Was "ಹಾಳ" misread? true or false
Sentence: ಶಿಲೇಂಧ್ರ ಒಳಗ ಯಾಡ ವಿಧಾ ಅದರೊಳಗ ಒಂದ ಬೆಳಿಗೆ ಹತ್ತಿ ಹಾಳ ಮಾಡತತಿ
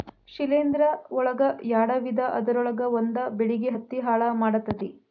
false